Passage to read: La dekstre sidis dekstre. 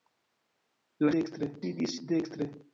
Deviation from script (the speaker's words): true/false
false